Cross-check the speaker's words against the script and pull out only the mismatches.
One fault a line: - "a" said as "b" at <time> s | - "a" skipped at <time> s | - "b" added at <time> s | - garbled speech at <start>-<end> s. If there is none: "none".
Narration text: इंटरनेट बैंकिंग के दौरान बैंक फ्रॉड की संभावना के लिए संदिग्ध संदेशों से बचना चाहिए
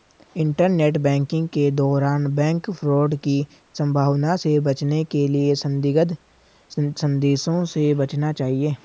- "से बचने" added at 4.4 s